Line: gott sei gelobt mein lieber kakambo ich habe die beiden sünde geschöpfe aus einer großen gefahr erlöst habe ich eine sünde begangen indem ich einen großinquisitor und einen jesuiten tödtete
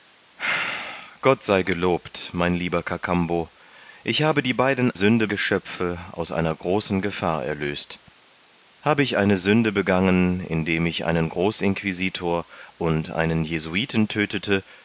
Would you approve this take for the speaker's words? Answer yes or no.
yes